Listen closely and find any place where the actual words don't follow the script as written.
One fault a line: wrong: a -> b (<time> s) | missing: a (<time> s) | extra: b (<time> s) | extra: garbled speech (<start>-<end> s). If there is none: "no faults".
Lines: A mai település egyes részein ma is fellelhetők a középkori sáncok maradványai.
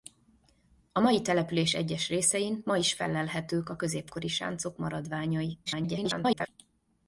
extra: garbled speech (5.7-6.5 s)